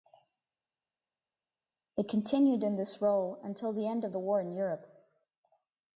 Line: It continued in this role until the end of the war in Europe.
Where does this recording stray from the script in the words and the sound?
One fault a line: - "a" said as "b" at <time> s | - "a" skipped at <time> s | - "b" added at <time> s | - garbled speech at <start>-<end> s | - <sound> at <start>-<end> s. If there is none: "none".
none